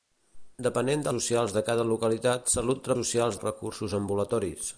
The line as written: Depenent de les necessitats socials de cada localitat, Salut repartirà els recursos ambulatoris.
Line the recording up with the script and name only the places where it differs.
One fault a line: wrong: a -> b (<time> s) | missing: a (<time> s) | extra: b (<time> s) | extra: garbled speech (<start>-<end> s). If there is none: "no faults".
missing: les necessitats (1.1 s)
wrong: repartirà -> socials (3.0 s)